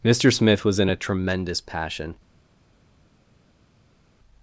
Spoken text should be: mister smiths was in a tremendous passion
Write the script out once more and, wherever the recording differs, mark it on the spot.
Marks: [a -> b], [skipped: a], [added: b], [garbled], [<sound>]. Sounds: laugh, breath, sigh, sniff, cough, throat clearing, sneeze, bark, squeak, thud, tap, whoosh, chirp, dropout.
mister [smiths -> smith] was in a tremendous passion